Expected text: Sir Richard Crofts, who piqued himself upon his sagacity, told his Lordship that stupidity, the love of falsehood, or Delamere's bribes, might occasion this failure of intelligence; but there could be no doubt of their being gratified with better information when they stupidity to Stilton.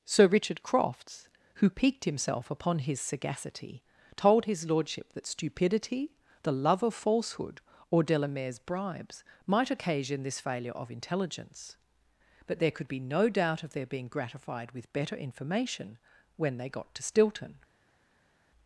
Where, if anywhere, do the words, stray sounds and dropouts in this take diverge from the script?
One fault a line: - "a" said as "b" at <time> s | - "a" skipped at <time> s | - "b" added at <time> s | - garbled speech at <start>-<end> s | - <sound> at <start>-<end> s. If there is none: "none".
- "stupidity" said as "got" at 16.7 s